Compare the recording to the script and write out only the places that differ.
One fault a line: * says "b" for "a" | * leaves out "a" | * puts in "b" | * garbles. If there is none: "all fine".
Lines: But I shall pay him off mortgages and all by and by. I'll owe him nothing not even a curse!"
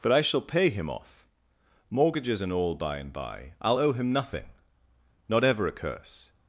* says "ever" for "even"